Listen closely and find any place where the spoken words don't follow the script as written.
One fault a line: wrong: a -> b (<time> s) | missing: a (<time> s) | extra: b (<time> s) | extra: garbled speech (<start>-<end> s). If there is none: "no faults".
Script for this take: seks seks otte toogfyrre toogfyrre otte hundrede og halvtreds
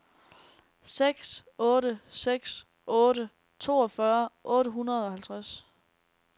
extra: otte (1.6 s)
missing: toogfyrre (4.3 s)